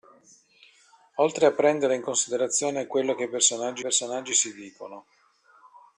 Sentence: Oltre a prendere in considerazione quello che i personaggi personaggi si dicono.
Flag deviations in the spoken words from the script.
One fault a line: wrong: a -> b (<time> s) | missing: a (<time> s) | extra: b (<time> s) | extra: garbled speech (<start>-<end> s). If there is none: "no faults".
no faults